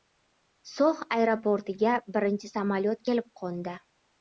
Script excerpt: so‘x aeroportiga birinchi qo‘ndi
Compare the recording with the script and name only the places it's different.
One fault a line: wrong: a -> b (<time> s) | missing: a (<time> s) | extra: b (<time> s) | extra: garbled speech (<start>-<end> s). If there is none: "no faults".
extra: samolyot kelib (2.5 s)